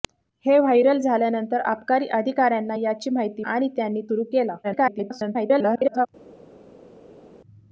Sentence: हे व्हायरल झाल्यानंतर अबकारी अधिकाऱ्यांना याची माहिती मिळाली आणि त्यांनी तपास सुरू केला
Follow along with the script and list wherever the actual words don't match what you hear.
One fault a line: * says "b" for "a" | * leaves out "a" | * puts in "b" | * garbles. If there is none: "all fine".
* leaves out "मिळाली"
* leaves out "तपास"
* garbles